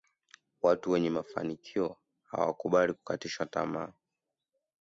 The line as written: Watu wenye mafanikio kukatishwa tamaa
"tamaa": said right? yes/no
yes